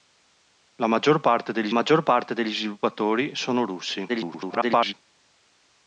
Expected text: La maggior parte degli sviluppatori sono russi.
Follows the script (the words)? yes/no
no